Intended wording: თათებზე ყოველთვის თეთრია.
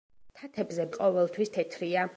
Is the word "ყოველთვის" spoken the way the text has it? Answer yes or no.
yes